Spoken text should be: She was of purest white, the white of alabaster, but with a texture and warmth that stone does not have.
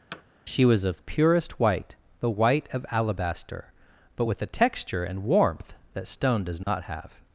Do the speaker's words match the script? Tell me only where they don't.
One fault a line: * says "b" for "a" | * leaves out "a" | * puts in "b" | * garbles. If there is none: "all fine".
all fine